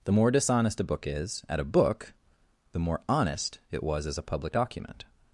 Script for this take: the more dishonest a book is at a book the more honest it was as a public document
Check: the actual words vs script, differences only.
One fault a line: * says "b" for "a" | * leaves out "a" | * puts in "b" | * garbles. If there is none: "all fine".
all fine